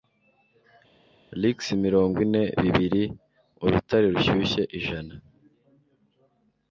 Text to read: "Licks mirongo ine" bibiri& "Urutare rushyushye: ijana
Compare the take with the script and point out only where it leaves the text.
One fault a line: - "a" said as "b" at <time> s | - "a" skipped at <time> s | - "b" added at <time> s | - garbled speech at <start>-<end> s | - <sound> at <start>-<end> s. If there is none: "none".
none